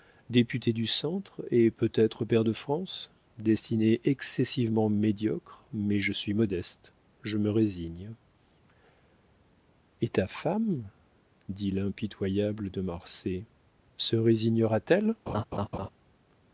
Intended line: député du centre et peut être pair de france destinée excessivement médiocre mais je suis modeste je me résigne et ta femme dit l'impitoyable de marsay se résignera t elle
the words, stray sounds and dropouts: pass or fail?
fail